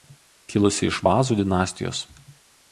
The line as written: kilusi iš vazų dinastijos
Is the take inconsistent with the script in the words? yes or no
no